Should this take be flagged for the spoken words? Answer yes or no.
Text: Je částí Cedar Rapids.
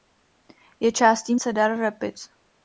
no